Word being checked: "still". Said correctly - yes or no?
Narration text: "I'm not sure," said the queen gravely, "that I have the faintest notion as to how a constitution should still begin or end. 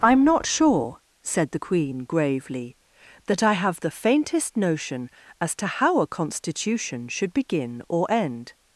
no